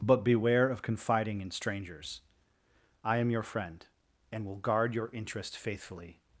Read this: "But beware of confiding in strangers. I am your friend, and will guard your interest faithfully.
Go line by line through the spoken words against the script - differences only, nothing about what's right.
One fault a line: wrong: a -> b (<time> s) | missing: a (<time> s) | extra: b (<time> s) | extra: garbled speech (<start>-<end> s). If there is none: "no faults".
no faults